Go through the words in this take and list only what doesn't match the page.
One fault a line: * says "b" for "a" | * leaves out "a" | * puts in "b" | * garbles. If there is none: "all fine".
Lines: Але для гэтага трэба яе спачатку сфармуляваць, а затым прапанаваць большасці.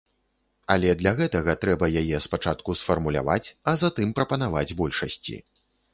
all fine